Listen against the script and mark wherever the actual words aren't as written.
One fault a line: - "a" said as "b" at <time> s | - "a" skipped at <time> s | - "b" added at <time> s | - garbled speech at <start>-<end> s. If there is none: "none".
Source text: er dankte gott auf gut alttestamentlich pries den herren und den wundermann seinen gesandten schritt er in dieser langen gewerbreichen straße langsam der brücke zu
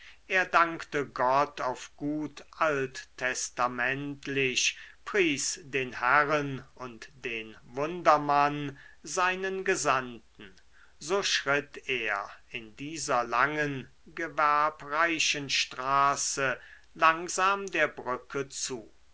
- "so" added at 11.0 s